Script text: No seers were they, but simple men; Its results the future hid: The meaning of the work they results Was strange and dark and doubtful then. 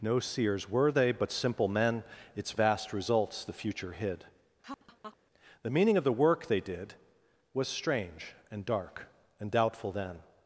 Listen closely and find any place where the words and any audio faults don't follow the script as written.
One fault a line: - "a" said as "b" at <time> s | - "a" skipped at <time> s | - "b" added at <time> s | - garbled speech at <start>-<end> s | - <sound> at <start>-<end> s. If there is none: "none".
- "vast" added at 2.5 s
- laugh at 4.6-5.2 s
- "results" said as "did" at 6.6 s